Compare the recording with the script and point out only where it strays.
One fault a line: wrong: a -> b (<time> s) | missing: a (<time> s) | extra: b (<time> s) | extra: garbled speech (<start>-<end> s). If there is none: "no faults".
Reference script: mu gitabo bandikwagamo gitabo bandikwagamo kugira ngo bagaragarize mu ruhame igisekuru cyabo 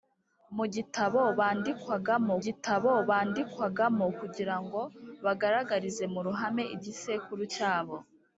no faults